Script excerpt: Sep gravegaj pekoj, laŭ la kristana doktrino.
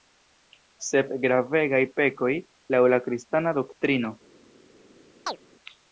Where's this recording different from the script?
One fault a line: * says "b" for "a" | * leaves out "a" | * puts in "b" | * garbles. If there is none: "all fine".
all fine